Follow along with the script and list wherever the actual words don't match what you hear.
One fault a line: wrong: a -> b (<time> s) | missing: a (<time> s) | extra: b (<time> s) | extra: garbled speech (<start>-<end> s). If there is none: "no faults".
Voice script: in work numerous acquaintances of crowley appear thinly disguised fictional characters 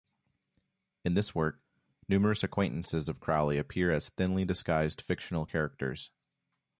extra: this (1.1 s)
extra: as (3.9 s)